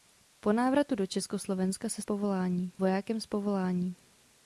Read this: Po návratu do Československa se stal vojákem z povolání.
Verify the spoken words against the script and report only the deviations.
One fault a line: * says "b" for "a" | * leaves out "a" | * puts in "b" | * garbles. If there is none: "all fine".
* says "povolání" for "stal"